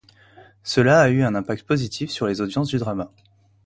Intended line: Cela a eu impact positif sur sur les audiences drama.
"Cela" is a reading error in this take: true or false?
false